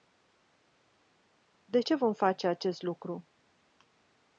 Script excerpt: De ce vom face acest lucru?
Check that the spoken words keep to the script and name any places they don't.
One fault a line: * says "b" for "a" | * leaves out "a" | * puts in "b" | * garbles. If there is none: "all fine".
all fine